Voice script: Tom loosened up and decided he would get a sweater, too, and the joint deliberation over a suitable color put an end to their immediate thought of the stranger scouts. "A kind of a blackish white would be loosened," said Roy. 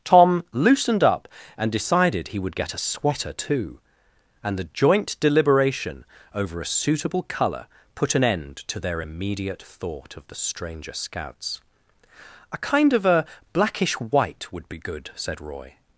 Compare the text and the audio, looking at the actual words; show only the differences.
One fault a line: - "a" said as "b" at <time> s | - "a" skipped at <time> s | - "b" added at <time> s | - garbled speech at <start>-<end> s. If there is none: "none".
- "loosened" said as "good" at 14.8 s